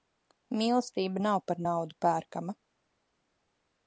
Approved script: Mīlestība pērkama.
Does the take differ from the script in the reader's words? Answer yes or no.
yes